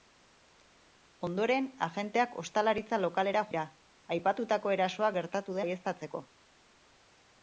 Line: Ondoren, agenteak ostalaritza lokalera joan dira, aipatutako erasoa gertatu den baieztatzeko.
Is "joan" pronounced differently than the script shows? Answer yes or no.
yes